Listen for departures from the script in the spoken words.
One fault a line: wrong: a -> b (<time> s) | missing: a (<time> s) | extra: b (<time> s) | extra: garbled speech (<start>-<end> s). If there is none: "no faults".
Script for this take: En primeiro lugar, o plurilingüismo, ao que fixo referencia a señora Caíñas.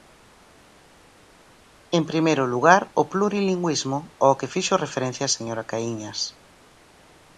no faults